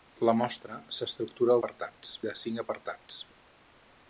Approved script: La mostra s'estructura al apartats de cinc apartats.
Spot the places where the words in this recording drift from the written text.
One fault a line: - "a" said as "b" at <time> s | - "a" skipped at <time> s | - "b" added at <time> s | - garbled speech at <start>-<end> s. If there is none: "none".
none